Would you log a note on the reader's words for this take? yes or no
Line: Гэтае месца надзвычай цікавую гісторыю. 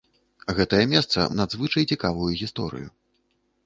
no